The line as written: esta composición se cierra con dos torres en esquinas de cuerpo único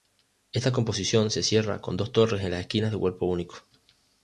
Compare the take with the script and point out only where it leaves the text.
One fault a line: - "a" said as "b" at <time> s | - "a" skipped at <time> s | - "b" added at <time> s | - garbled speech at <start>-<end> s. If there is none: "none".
- "las" added at 2.5 s